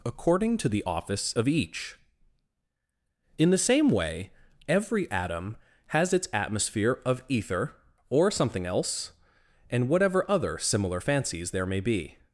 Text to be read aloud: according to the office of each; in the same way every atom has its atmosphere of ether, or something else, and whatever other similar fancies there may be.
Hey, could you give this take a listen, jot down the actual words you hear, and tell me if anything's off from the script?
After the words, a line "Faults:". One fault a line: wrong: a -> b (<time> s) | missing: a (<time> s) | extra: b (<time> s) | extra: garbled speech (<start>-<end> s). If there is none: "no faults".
according to the office of each; in the same way every atom has its atmosphere of ether, or something else, and whatever other similar fancies there may be.
Faults:
no faults